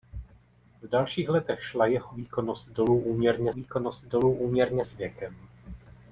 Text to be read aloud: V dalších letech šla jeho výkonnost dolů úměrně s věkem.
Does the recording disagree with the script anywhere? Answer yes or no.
yes